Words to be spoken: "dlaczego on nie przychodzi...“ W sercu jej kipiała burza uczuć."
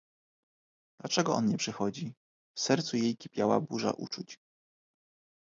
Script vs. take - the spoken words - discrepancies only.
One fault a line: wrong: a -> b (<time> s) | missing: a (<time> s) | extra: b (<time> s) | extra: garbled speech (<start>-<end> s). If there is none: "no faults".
no faults